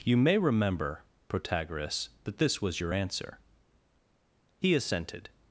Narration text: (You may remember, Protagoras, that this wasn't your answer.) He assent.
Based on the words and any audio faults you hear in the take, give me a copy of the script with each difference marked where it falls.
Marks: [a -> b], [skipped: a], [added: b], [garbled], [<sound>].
(You may remember, Protagoras, that this [wasn't -> was] your answer.) He [assent. -> assented]